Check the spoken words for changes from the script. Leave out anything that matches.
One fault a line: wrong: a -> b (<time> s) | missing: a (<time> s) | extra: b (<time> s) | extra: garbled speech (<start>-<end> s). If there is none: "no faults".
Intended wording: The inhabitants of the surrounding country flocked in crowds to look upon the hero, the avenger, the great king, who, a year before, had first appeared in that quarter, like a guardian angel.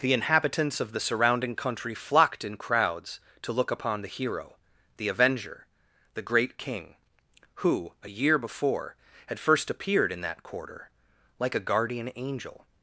no faults